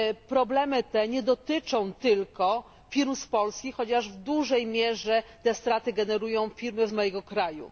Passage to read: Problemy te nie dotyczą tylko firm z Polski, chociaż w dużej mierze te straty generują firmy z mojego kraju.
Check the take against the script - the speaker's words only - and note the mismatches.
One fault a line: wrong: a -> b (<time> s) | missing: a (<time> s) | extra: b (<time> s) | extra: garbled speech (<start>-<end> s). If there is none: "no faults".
missing: z (6.9 s)